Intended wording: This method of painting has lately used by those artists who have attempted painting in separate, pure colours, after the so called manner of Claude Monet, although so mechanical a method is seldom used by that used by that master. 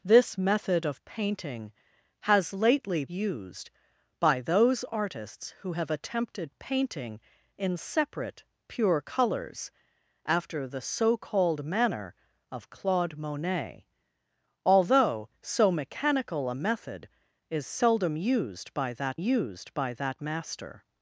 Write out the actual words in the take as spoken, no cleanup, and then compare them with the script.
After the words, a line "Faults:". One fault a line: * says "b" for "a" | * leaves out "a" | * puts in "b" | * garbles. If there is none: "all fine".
This method of painting has lately used by those artists who have attempted painting in separate, pure colours, after the so called manner of Claude Monet, although so mechanical a method is seldom used by that used by that master.
Faults:
all fine